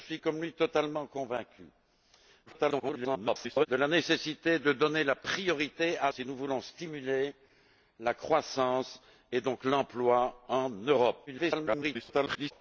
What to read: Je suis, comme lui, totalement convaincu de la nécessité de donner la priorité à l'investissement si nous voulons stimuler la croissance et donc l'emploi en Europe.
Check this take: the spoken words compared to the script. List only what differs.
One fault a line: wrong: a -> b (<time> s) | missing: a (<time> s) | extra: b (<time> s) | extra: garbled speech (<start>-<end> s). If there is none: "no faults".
extra: garbled speech (2.5-3.7 s)
missing: l'investissement (6.1 s)
extra: garbled speech (11.3-12.5 s)